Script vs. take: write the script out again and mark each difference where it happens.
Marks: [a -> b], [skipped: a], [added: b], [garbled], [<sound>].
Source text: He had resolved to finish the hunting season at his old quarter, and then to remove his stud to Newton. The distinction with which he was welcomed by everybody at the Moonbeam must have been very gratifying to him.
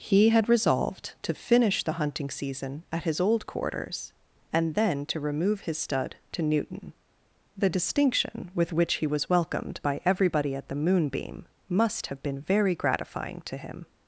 He had resolved to finish the hunting season at his old [quarter, -> quarters] and then to remove his stud to Newton. The distinction with which he was welcomed by everybody at the Moonbeam must have been very gratifying to him.